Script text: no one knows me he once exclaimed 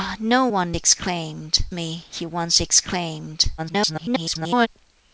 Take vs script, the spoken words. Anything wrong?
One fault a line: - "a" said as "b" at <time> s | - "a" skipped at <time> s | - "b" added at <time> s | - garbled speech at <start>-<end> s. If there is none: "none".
- "knows" said as "exclaimed" at 0.7 s
- garbled speech at 3.6-4.7 s